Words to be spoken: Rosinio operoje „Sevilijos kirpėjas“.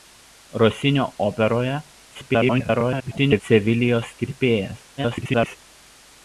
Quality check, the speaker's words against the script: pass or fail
fail